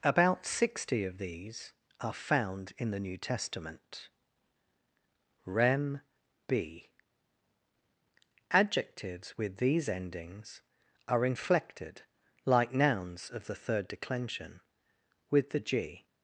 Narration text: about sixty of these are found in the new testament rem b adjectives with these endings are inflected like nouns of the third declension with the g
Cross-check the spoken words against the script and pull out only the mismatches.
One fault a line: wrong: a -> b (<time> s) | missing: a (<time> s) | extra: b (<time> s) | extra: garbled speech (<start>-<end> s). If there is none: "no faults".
no faults